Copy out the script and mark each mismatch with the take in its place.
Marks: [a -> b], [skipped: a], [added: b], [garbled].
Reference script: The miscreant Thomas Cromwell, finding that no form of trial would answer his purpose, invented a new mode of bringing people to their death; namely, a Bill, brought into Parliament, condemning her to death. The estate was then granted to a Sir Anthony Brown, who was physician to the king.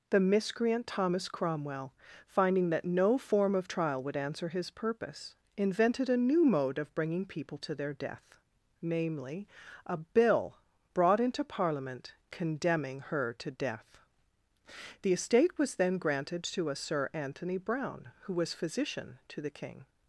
The miscreant Thomas Cromwell, finding that no form of trial would answer his purpose, invented a new mode of bringing people to their death; namely, a Bill, brought into Parliament, condemning her to death. The estate was then granted to a Sir Anthony Brown, who was physician to the king.